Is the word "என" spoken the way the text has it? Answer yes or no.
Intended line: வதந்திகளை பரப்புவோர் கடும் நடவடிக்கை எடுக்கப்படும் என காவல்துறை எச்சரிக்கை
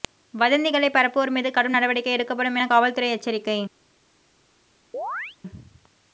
yes